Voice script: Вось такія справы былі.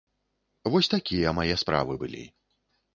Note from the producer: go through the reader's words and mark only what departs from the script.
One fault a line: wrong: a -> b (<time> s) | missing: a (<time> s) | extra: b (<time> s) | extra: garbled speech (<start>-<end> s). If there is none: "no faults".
extra: мае (1.4 s)